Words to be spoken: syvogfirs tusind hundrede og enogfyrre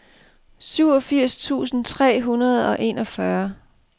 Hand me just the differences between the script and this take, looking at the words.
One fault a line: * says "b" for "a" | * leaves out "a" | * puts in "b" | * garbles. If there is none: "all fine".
* puts in "tre"